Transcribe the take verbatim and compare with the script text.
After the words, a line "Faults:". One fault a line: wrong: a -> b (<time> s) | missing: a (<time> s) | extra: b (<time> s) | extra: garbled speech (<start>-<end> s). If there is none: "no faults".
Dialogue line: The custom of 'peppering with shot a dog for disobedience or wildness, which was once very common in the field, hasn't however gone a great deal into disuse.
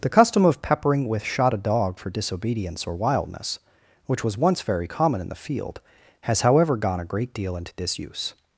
The custom of 'peppering with shot a dog for disobedience or wildness, which was once very common in the field, has however gone a great deal into disuse.
Faults:
wrong: hasn't -> has (6.2 s)